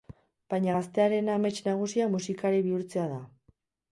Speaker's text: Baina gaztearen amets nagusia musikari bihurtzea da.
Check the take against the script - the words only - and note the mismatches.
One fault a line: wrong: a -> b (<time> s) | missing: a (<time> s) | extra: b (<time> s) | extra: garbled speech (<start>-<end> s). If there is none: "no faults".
no faults